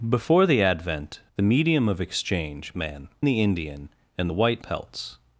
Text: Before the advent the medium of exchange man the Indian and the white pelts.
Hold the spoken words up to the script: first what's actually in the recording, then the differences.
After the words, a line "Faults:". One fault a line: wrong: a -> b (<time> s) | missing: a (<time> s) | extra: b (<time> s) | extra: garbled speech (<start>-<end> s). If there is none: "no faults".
Before the advent the medium of exchange man the Indian and the white pelts.
Faults:
no faults